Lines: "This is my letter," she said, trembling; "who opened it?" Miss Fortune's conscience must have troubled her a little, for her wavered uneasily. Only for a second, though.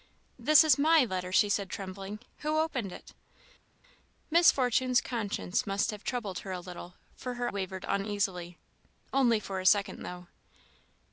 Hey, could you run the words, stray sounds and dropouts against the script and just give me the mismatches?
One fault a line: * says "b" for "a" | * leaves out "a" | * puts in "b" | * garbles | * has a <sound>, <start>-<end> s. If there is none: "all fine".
all fine